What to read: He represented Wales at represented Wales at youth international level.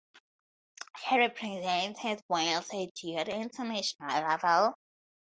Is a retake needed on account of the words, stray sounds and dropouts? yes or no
yes